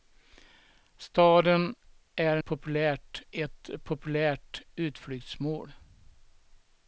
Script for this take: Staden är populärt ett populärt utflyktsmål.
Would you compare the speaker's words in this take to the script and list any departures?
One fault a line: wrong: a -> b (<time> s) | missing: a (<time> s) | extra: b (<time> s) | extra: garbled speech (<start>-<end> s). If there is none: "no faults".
no faults